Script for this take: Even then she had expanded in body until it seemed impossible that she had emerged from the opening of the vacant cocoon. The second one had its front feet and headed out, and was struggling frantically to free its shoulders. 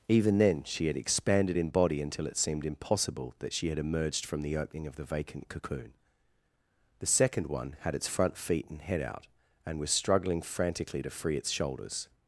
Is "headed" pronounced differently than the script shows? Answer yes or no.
yes